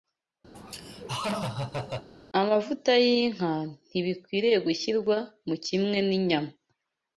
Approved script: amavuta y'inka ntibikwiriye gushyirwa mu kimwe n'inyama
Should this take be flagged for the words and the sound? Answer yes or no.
yes